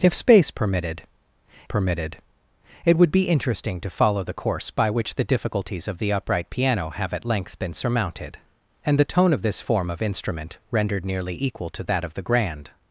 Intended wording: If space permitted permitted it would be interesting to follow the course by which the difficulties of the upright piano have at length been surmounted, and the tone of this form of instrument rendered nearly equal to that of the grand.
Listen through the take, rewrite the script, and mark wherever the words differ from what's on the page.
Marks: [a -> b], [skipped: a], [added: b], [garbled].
If space permitted permitted it would be interesting to follow the course by which the difficulties of the upright piano have at length been surmounted, and the tone of this form of instrument rendered nearly equal to that of the grand.